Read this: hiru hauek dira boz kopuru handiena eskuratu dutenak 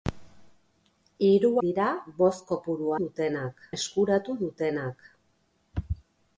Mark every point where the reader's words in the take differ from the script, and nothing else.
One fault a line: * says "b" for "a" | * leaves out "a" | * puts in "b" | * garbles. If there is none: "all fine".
* leaves out "hauek"
* says "dutenak" for "handiena"